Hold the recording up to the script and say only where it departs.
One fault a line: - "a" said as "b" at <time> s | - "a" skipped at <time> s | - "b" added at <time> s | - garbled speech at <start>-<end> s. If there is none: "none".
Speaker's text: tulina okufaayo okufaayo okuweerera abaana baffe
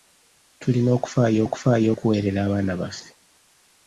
none